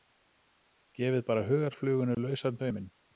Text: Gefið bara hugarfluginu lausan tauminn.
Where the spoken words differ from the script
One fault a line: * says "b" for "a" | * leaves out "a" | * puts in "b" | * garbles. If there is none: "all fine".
all fine